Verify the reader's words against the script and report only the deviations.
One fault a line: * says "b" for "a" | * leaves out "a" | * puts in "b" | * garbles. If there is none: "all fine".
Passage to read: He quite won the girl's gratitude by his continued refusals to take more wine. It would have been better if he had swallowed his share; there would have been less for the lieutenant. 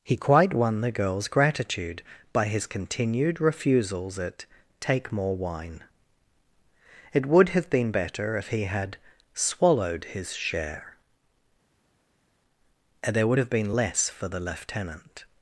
* says "at" for "to"